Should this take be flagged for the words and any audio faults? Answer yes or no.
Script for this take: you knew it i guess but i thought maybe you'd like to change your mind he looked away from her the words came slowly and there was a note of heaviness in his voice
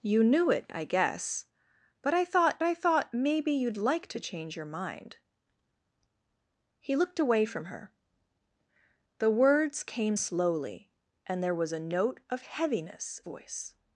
yes